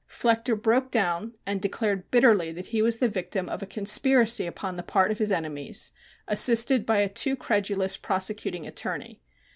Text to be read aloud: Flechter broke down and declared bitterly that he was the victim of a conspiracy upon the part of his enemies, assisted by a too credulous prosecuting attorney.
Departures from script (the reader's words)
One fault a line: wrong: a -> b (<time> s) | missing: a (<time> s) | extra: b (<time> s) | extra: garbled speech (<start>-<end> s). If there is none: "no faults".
no faults